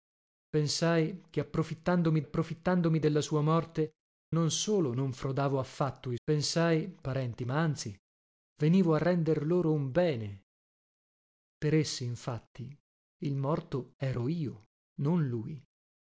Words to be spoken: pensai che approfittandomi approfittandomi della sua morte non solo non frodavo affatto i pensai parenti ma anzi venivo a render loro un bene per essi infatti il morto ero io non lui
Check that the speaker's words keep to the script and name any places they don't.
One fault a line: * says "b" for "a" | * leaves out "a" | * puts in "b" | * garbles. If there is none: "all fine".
all fine